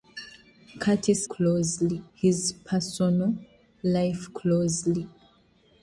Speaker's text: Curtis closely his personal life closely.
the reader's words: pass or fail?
pass